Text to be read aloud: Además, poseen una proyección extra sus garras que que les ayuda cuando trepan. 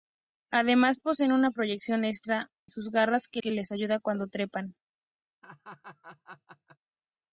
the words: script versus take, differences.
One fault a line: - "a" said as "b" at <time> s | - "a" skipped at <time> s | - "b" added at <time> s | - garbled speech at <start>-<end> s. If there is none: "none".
none